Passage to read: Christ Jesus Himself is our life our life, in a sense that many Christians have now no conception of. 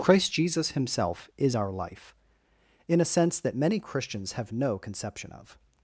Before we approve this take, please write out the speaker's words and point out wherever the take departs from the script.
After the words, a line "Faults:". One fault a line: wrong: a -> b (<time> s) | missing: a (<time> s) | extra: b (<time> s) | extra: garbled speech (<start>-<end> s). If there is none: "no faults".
Christ Jesus Himself is our life, in a sense that many Christians have no conception of.
Faults:
missing: our life (2.2 s)
missing: now (4.5 s)